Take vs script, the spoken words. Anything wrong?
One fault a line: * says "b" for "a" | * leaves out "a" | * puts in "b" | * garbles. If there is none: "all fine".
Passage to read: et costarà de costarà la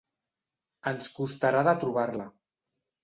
* says "ens" for "et"
* says "trobar" for "costarà"